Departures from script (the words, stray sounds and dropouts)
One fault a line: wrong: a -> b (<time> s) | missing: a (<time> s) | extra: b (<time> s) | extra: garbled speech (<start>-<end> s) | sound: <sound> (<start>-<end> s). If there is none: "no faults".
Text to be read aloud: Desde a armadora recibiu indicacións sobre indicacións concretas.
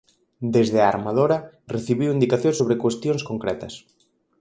wrong: indicacións -> cuestións (2.8 s)